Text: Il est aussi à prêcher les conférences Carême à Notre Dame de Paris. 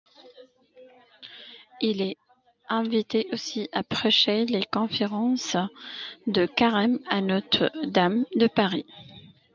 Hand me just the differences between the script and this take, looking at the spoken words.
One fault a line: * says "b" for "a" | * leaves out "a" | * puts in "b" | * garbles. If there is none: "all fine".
* puts in "invité"
* puts in "de"